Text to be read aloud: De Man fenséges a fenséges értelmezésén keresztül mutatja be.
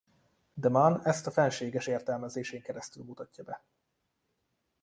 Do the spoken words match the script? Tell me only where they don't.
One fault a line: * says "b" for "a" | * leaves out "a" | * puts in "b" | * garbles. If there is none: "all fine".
* says "ezt" for "fenséges"